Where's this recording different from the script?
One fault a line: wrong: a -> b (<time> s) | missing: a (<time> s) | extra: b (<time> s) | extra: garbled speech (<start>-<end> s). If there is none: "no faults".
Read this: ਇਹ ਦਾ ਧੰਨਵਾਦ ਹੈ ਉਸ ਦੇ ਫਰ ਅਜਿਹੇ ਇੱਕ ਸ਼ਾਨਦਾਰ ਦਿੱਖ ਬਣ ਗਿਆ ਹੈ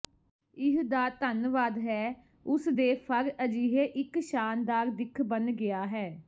no faults